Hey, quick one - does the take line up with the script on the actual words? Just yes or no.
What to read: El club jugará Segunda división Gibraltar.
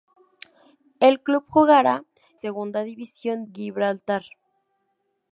yes